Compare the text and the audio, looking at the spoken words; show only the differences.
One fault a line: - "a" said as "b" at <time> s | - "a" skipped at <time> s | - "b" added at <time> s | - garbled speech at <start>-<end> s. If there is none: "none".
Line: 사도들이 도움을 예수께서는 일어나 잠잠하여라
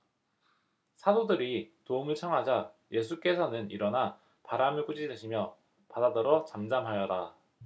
- "청하자" added at 2.1 s
- "바람을 꾸짖으시며 바다더러" added at 4.4 s